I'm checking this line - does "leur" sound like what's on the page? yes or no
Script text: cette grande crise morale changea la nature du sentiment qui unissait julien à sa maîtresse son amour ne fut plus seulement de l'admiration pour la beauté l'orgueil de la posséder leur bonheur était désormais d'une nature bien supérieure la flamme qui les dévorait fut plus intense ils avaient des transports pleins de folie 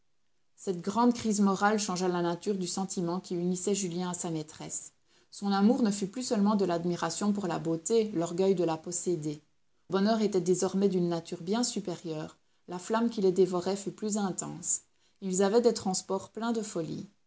no